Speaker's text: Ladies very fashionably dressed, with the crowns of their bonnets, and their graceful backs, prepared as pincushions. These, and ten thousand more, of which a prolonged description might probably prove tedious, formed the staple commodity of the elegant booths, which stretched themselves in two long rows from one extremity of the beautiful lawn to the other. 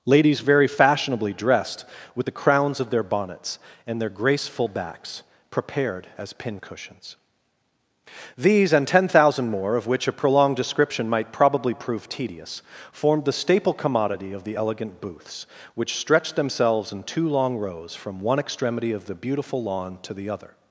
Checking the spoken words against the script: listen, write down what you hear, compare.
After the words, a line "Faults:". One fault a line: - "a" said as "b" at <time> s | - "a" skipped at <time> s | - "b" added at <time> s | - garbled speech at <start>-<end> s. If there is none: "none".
Ladies very fashionably dressed, with the crowns of their bonnets, and their graceful backs, prepared as pincushions. These, and ten thousand more, of which a prolonged description might probably prove tedious, formed the staple commodity of the elegant booths, which stretched themselves in two long rows from one extremity of the beautiful lawn to the other.
Faults:
none